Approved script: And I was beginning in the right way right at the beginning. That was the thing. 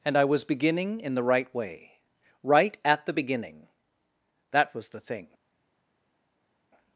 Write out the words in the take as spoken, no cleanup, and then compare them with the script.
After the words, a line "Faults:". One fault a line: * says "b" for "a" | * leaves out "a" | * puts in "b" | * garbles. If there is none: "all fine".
And I was beginning in the right way right at the beginning. That was the thing.
Faults:
all fine